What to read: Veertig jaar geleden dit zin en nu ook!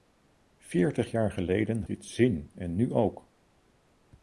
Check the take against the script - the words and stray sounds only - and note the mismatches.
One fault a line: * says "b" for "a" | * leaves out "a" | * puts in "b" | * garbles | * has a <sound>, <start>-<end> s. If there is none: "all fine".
all fine